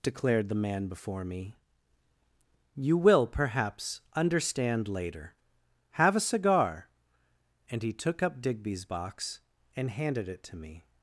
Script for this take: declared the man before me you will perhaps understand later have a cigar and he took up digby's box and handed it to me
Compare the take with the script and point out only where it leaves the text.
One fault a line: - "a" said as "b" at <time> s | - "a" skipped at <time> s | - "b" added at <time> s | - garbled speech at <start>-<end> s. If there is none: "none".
none